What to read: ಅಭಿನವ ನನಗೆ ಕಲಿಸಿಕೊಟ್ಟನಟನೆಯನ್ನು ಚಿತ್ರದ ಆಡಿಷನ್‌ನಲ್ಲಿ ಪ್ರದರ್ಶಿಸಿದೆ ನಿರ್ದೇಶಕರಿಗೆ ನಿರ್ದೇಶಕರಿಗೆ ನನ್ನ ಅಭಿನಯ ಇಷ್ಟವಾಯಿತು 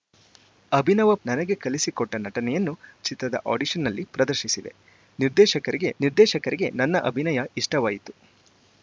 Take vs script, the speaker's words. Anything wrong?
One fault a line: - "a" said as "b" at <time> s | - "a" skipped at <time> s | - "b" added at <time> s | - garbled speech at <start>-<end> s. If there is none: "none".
none